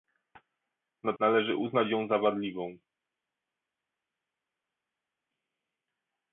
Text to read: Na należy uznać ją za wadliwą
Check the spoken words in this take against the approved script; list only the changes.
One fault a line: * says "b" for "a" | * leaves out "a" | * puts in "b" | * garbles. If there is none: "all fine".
all fine